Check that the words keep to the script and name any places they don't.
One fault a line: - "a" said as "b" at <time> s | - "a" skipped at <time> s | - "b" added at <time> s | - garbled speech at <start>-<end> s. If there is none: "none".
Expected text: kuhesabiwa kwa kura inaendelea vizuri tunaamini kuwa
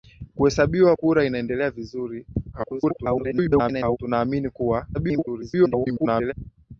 - "kwa" skipped at 0.9 s
- garbled speech at 2.5-4.0 s
- garbled speech at 4.9-6.3 s